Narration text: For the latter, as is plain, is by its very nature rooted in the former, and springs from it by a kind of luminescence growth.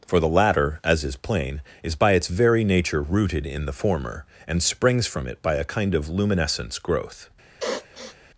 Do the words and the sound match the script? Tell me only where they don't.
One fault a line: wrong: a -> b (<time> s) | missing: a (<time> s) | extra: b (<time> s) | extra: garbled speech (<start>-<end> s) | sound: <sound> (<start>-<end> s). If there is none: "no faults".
sound: sniff (7.6-8.2 s)